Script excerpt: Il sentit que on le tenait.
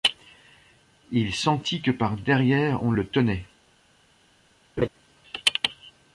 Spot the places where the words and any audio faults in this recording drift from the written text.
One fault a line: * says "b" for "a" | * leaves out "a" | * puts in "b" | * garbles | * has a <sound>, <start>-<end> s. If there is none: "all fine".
* puts in "par derrière"
* has a laugh, 4.8-4.9 s